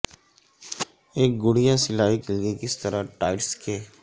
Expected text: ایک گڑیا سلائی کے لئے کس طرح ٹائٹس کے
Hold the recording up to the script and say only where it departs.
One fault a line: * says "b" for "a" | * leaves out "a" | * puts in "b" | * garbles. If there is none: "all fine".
all fine